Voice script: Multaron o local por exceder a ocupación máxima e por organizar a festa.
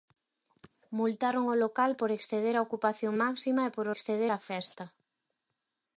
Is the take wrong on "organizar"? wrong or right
wrong